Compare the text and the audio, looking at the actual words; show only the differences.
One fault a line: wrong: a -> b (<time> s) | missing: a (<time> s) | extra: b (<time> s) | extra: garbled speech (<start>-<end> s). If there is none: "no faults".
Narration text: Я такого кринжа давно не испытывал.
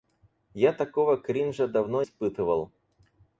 missing: не (2.0 s)